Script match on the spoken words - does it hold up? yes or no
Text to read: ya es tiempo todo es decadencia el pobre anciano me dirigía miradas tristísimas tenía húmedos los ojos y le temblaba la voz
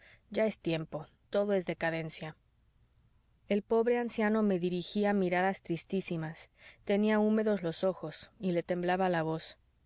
yes